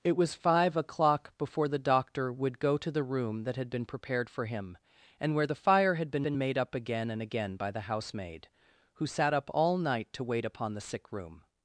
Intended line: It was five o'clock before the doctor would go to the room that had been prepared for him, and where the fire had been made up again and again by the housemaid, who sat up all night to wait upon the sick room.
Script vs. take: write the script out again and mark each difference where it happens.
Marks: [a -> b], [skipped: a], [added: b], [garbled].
It was five o'clock before the doctor would go to the room that had been prepared for him, and where the fire had been [added: been] made up again and again by the housemaid, who sat up all night to wait upon the sick room.